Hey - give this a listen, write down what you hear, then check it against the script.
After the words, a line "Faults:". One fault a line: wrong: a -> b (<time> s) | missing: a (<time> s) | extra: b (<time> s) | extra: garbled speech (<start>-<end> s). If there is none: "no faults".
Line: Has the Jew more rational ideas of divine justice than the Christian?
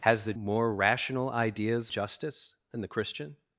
Has the More rational ideas justice than the Christian?
Faults:
missing: Jew (0.3 s)
missing: of divine (1.9 s)